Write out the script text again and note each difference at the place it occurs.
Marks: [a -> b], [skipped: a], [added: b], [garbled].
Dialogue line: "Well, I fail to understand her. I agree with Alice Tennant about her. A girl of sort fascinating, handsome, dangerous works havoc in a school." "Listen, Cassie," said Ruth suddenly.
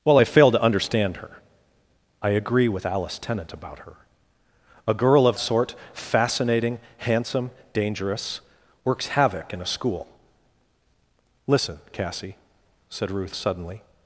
"Well, I fail to understand her. I agree with Alice Tennant about her. A girl of sort fascinating, handsome, dangerous works havoc in a school." "Listen, Cassie," said Ruth suddenly.